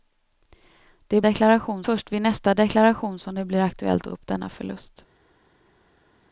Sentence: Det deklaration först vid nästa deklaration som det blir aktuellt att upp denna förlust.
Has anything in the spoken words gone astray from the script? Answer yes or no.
no